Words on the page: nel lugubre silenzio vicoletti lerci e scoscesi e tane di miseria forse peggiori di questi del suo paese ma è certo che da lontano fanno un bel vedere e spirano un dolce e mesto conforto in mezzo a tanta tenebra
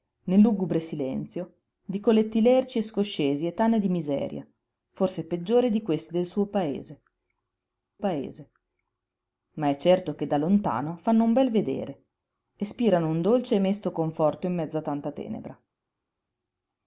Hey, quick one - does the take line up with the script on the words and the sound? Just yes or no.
no